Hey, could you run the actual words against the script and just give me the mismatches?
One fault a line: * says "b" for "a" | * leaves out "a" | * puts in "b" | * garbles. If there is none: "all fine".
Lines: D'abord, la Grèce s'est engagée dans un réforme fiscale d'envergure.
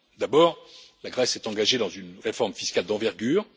* says "une" for "un"